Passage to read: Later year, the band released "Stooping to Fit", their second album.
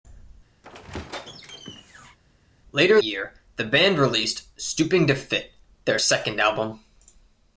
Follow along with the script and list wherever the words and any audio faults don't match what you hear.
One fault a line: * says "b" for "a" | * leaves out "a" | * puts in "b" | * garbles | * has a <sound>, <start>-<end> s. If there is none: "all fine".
* has a squeak, 0.6-2.2 s